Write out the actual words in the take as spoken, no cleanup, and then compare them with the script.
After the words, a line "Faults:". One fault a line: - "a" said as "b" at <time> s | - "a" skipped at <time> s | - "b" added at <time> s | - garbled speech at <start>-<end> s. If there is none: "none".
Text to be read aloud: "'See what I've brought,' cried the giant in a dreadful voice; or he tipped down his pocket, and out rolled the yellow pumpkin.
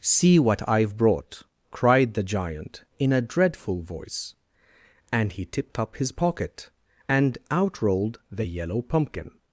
"'See what I've brought,' cried the giant in a dreadful voice; and he tipped up his pocket, and out rolled the yellow pumpkin.
Faults:
- "or" said as "and" at 5.1 s
- "down" said as "up" at 5.8 s